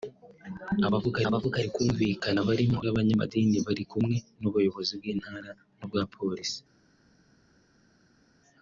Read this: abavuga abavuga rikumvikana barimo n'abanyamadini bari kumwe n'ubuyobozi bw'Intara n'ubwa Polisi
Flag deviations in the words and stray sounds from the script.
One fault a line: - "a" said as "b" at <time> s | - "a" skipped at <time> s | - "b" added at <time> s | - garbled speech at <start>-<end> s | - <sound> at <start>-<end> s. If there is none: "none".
none